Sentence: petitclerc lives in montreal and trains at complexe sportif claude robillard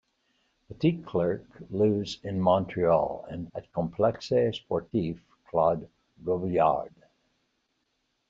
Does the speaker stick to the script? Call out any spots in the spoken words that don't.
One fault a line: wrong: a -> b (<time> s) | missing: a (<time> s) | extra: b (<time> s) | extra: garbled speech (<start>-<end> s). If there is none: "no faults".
missing: trains (3.5 s)